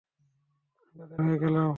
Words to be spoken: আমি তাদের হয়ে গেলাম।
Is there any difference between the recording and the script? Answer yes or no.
no